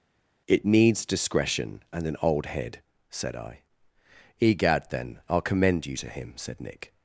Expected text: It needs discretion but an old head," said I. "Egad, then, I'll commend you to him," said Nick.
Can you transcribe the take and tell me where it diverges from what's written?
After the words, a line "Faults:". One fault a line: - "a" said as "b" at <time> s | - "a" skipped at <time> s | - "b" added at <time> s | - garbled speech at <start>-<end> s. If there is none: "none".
It needs discretion and an old head," said I. "Egad, then, I'll commend you to him," said Nick.
Faults:
- "but" said as "and" at 1.9 s